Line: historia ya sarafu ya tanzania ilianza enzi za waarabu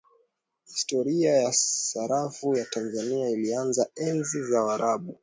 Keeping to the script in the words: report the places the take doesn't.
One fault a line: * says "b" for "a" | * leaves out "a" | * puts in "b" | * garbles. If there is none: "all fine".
all fine